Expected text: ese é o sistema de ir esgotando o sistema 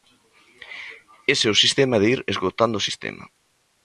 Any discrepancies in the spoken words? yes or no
no